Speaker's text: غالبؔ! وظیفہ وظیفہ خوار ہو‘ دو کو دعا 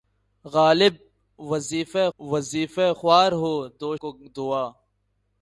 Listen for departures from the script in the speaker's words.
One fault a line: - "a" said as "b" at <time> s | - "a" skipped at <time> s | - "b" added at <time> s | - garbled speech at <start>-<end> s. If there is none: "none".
none